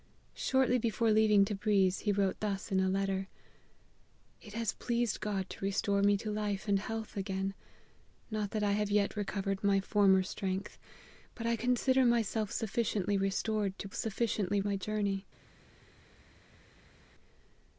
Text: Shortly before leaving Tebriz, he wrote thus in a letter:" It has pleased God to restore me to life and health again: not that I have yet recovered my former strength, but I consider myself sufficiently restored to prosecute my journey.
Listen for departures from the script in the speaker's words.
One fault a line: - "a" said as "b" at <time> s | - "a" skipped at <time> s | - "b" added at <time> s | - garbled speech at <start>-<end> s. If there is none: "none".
- "prosecute" said as "sufficiently" at 13.9 s